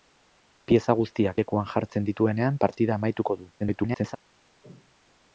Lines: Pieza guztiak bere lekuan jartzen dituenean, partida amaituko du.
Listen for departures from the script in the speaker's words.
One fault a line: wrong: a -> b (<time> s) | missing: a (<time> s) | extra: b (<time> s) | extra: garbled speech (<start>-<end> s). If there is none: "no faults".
missing: bere (1.4 s)
extra: garbled speech (3.6-4.2 s)